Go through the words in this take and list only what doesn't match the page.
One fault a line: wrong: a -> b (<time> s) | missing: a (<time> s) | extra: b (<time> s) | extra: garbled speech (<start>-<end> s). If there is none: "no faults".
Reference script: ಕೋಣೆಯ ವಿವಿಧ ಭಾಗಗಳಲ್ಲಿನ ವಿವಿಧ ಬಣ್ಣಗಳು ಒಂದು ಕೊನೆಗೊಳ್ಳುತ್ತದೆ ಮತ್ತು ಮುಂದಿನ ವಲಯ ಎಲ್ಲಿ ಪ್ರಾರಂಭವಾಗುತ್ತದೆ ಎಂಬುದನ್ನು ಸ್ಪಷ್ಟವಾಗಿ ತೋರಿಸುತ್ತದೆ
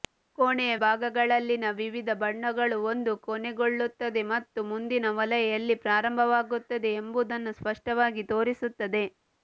missing: ವಿವಿಧ (0.8 s)